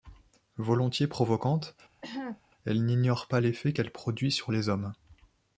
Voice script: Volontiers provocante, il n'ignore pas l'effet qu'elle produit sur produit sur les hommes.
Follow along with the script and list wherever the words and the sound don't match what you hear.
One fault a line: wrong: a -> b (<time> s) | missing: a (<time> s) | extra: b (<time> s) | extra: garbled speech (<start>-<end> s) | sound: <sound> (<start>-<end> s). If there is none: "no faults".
sound: cough (2.0-2.4 s)
wrong: il -> elle (2.6 s)
missing: produit sur (4.5 s)